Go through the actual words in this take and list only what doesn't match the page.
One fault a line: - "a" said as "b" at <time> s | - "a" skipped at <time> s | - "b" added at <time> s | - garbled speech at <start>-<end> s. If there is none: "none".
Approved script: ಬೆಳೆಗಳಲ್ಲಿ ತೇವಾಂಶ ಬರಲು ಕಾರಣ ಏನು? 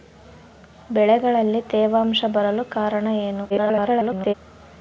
- garbled speech at 3.5-4.3 s